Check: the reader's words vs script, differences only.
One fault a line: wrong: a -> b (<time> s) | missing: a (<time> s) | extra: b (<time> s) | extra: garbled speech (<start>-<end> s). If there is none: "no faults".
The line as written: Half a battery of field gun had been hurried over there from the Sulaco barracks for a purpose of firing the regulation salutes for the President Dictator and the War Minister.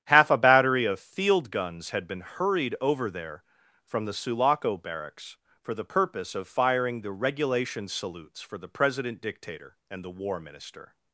wrong: gun -> guns (1.5 s)
wrong: a -> the (5.7 s)